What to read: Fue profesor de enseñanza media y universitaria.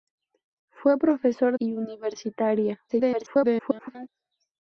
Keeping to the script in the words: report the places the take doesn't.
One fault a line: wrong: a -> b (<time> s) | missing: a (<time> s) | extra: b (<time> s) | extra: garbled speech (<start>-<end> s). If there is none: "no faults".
missing: de enseñanza media (1.6 s)
extra: garbled speech (2.9-4.1 s)